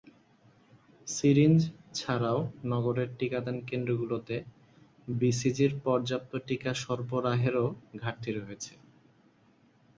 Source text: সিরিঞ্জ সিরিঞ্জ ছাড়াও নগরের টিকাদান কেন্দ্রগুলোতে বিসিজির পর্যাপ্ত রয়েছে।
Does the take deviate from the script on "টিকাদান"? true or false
false